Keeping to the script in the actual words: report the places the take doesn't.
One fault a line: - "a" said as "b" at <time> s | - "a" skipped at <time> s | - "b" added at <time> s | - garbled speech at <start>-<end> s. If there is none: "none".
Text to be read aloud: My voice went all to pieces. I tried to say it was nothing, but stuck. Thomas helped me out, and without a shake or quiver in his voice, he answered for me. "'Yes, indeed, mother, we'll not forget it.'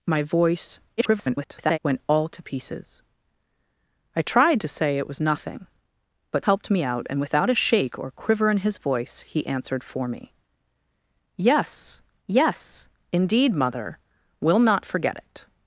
- garbled speech at 1.0-1.8 s
- "stuck Thomas" skipped at 6.5 s
- "yes" added at 12.3 s